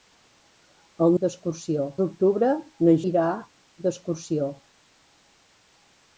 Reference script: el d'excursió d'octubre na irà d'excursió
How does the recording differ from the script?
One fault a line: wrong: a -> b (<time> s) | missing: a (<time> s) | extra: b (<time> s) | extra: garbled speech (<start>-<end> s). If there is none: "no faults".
no faults